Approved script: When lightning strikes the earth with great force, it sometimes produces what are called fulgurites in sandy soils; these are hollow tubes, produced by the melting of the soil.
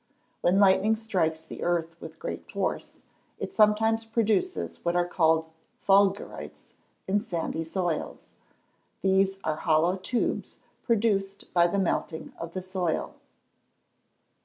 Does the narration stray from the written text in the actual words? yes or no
no